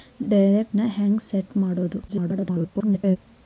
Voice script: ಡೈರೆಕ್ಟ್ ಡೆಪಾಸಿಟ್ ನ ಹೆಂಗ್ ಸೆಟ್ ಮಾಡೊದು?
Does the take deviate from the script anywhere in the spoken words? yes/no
yes